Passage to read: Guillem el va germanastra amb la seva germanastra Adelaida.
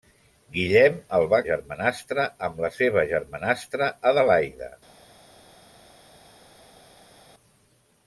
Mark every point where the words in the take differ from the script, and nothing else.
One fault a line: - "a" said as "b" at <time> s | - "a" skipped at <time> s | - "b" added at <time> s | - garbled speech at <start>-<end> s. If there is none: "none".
none